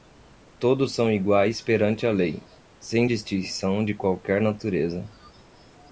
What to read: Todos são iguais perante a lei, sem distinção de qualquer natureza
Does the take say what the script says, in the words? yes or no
yes